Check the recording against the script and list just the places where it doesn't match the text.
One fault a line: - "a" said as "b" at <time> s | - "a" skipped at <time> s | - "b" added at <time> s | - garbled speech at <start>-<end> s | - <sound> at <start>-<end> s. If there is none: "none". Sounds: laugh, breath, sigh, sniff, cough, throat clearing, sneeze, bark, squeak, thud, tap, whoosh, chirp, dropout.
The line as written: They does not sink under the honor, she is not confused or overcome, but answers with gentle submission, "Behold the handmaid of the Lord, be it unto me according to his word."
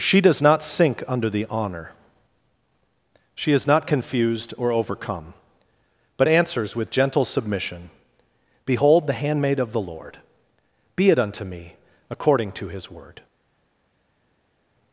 - "They" said as "She" at 0.0 s